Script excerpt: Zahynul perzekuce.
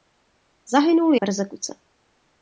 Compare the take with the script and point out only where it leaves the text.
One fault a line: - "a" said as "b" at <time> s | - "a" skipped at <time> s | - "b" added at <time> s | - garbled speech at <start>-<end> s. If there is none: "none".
none